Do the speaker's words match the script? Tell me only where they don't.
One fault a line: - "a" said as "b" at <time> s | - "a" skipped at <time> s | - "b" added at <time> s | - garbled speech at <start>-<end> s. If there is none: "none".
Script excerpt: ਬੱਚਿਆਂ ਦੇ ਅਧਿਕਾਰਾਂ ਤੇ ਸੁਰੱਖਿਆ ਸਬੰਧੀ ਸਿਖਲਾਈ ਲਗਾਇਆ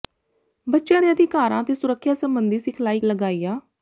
none